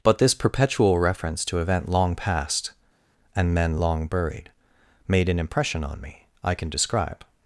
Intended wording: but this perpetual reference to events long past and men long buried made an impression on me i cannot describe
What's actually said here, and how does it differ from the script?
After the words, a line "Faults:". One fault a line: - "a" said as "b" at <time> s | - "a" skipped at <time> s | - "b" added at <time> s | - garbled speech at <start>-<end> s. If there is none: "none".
but this perpetual reference to event long past and men long buried made an impression on me i can describe
Faults:
- "events" said as "event" at 1.6 s
- "cannot" said as "can" at 6.5 s